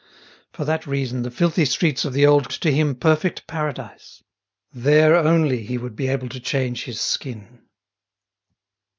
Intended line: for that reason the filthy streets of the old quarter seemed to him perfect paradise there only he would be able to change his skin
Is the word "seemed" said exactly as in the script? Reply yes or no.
no